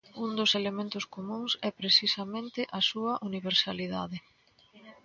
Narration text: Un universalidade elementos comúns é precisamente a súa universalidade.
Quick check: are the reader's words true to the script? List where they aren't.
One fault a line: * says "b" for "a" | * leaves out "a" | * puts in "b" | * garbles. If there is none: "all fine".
* says "dos" for "universalidade"